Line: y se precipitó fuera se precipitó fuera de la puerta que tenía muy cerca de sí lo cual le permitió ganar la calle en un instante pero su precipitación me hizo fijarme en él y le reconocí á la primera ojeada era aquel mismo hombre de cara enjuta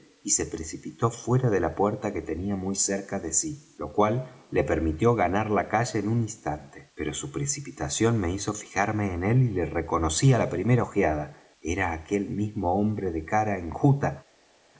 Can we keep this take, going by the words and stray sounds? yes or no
no